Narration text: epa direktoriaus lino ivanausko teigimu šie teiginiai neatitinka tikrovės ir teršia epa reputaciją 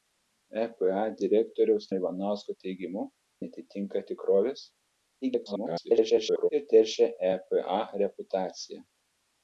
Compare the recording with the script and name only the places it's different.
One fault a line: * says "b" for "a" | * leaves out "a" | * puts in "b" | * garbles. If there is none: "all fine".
* leaves out "lino"
* leaves out "šie teiginiai"
* garbles